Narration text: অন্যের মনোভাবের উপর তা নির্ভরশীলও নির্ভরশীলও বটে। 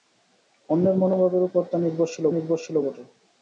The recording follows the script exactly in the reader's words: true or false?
true